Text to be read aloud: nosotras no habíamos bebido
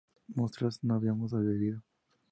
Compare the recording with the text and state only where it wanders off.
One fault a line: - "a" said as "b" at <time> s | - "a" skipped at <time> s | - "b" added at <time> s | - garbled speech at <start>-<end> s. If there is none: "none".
none